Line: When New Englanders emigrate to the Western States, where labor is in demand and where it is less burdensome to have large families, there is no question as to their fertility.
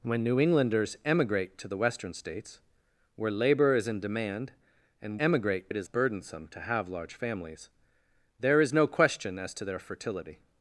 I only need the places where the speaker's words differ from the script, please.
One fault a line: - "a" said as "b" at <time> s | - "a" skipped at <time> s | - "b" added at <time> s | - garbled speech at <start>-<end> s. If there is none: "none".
- "where" said as "emigrate" at 5.2 s
- "less" skipped at 5.9 s